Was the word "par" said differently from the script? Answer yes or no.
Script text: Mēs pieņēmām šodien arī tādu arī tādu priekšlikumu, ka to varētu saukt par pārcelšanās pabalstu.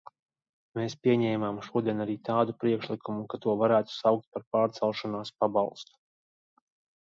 no